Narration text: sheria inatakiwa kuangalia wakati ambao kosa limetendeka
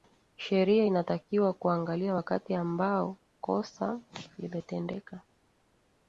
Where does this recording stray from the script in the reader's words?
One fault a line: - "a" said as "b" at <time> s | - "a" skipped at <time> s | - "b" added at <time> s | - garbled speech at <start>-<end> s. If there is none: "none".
none